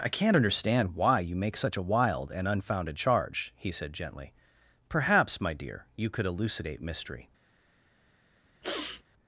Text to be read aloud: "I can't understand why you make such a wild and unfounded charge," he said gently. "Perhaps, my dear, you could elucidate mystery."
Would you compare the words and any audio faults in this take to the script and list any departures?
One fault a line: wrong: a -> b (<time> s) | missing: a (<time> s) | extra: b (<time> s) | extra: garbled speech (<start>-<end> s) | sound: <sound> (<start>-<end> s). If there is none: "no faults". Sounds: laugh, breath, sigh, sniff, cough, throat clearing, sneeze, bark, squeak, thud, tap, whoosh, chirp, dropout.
sound: sniff (8.6-9.0 s)